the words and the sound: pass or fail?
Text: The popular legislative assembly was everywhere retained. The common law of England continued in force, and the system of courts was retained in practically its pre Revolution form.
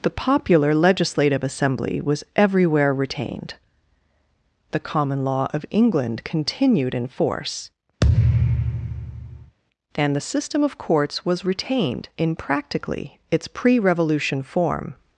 fail